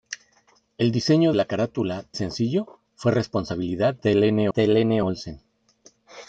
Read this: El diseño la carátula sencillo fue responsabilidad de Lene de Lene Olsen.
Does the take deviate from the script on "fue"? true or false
false